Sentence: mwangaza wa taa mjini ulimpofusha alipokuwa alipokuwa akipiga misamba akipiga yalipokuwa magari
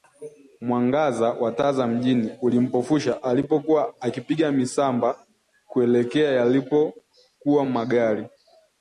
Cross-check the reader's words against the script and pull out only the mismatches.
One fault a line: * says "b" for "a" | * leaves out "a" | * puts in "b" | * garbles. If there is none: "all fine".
* puts in "za"
* leaves out "alipokuwa"
* says "kuelekea" for "akipiga"